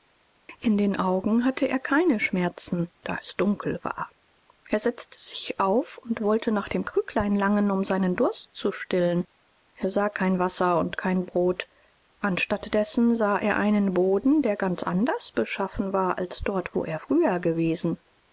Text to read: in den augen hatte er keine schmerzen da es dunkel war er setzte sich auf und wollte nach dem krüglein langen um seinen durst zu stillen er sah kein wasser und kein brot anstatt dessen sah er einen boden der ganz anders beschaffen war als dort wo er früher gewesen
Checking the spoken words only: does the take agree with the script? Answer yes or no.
yes